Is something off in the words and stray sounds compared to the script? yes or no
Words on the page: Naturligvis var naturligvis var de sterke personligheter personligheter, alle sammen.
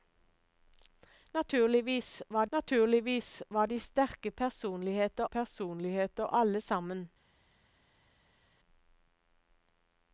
no